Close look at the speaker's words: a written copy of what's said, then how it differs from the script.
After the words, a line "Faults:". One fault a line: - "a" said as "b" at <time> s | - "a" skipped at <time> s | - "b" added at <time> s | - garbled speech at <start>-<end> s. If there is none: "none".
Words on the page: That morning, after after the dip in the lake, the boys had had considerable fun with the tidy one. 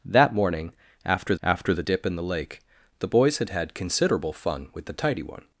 That morning, after after the dip in the lake, the boys had had considerable fun with the tidy one.
Faults:
none